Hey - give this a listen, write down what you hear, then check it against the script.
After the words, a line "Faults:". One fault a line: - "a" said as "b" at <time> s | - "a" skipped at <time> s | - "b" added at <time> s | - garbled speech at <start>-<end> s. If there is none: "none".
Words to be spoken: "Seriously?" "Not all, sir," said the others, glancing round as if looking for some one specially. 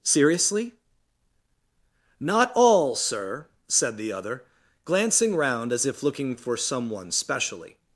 "Seriously?" "Not all, sir," said the other, glancing round as if looking for some one specially.
Faults:
- "others" said as "other" at 4.1 s